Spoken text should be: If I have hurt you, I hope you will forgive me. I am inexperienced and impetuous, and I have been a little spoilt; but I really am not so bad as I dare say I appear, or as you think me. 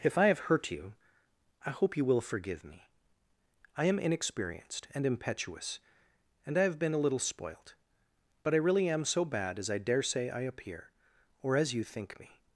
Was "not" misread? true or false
true